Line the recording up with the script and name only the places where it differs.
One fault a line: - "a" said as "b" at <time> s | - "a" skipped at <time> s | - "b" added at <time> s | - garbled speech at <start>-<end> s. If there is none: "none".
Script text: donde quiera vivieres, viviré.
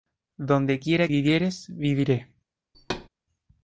none